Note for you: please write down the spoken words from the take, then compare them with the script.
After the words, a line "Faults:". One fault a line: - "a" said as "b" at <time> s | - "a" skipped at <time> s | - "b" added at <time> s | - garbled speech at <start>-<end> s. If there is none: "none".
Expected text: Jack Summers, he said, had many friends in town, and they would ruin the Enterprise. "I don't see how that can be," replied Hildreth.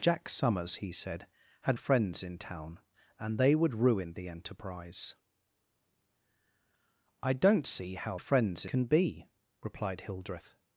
Jack Summers, he said, had friends in town, and they would ruin the Enterprise. "I don't see how friends can be," replied Hildreth.
Faults:
- "many" skipped at 1.8 s
- "that" said as "friends" at 8.2 s